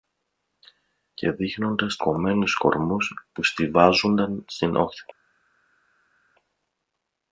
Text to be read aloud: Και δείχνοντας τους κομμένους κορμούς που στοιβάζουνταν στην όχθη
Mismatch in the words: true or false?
true